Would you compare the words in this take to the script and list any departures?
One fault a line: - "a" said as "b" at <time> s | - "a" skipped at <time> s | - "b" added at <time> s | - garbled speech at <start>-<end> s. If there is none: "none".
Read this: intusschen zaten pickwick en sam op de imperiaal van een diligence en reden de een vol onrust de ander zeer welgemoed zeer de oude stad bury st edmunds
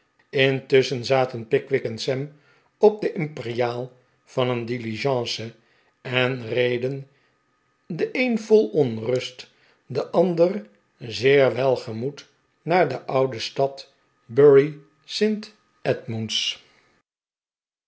- "zeer" said as "naar" at 12.6 s